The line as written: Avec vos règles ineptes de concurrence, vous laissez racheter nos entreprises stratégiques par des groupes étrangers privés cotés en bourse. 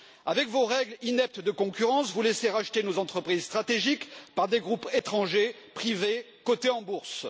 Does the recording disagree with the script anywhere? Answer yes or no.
no